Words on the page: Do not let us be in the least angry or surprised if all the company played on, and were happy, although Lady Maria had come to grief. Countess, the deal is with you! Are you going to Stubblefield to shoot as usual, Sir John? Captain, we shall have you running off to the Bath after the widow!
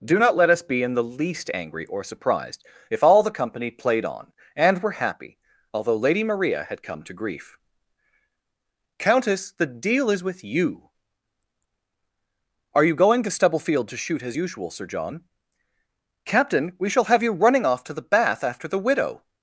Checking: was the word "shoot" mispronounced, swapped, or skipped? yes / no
no